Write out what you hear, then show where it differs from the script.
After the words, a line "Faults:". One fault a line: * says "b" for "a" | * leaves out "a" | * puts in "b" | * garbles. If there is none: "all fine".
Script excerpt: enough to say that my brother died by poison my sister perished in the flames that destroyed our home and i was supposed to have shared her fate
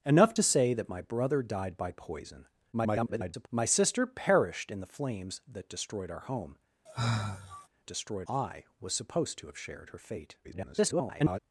enough to say that my brother died by poison [garbled] my sister perished in the flames that destroyed our home destroyed i was supposed to have shared her fate [garbled]
Faults:
* garbles
* says "destroyed" for "and"
* garbles